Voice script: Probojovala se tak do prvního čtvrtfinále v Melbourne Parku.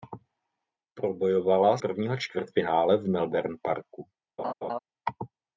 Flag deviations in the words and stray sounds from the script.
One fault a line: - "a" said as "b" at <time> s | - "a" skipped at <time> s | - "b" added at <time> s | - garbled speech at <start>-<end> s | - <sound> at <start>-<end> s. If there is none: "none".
- "se tak do" skipped at 1.8 s
- laugh at 4.4-4.8 s